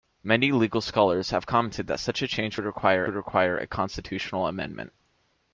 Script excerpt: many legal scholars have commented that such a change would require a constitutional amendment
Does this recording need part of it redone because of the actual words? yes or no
yes